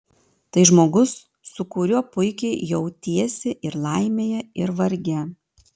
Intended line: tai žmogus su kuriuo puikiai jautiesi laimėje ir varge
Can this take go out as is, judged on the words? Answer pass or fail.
fail